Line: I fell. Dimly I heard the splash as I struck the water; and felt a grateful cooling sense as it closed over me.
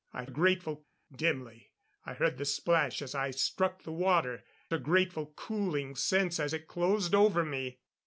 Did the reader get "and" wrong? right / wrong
wrong